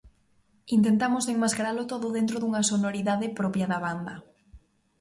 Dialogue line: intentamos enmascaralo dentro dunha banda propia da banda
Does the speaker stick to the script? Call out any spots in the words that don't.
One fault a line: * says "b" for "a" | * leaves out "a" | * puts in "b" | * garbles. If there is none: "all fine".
* puts in "todo"
* says "sonoridade" for "banda"